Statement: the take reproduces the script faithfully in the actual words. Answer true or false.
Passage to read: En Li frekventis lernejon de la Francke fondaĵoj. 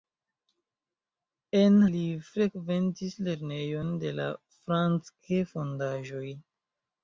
true